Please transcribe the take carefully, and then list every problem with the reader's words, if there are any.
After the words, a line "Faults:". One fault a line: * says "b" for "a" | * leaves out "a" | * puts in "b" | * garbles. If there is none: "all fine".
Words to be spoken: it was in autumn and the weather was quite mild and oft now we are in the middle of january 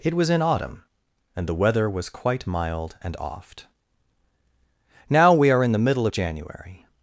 it was in autumn and the weather was quite mild and oft now we are in the middle of january
Faults:
all fine